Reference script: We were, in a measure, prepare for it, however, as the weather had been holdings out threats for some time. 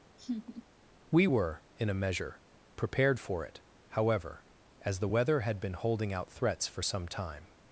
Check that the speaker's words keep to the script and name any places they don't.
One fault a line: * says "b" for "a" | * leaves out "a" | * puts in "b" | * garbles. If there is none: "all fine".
* says "prepared" for "prepare"
* says "holding" for "holdings"